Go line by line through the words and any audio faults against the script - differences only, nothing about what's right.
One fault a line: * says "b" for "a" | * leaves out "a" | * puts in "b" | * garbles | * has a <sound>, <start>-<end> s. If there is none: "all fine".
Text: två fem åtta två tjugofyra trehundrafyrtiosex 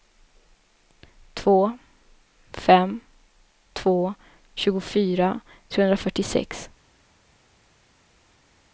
* leaves out "åtta"